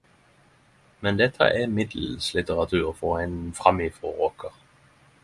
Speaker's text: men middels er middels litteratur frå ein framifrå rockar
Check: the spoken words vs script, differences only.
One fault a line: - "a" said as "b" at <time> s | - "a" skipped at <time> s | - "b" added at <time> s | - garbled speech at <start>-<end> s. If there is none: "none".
- "middels" said as "dette" at 1.2 s